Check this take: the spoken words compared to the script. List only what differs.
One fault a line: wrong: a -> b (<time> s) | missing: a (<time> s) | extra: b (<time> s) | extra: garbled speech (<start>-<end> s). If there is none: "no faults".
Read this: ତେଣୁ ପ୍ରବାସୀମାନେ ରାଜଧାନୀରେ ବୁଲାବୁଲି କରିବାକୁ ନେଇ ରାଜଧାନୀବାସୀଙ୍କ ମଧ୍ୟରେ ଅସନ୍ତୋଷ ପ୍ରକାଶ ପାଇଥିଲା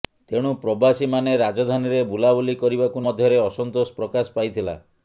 missing: ନେଇ ରାଜଧାନୀବାସୀଙ୍କ (3.0 s)